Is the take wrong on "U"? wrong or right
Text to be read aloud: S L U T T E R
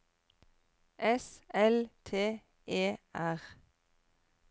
wrong